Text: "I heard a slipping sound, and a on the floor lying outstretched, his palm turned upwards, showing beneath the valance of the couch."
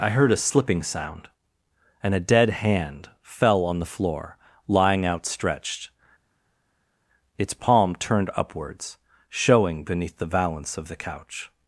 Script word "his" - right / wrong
wrong